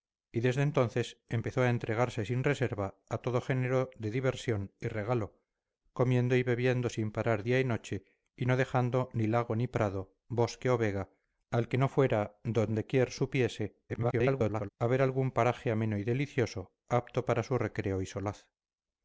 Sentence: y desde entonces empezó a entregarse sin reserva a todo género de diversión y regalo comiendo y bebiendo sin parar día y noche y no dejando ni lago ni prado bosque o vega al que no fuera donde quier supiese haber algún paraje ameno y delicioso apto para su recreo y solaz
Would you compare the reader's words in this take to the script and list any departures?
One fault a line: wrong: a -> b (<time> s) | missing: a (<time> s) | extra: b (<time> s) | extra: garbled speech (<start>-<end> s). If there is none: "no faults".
extra: garbled speech (13.9-14.7 s)